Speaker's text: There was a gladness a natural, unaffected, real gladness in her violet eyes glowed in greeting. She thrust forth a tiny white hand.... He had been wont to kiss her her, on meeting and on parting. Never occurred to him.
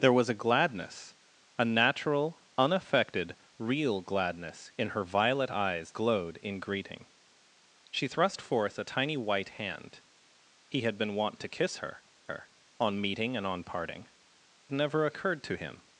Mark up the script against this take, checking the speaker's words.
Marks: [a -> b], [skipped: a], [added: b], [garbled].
There was a gladness a natural, unaffected, real gladness in her violet eyes glowed in greeting. She thrust forth a tiny white hand.... He had been wont to kiss her her, on meeting and on parting. Never occurred to him.